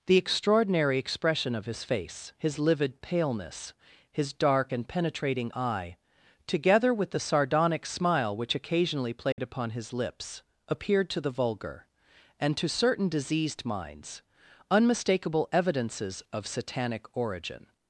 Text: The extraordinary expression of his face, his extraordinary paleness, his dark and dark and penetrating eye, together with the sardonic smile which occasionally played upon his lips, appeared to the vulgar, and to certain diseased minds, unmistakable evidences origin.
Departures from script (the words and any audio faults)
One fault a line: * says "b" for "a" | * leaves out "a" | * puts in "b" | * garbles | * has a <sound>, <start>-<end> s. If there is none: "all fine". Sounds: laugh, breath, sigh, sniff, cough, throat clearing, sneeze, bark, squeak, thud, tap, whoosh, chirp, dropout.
* says "livid" for "extraordinary"
* leaves out "dark and"
* has a dropout, 9.3-9.4 s
* puts in "of satanic"